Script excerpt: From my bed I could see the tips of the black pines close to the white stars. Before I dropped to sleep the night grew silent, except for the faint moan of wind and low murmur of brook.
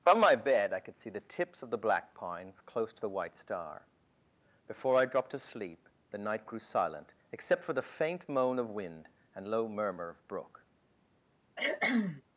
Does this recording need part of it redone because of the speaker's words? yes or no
yes